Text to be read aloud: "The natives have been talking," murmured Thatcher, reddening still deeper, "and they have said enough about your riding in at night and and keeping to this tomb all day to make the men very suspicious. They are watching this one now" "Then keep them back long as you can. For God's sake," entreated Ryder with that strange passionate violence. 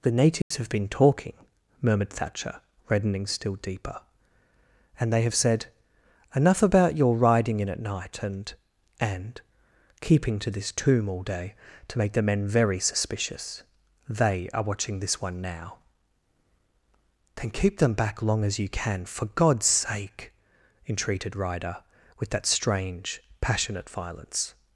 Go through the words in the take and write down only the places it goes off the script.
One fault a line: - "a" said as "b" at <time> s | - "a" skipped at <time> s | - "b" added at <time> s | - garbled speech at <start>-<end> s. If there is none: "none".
none